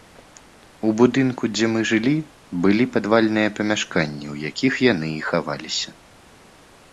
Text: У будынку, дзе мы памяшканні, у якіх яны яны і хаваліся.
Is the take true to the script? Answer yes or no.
no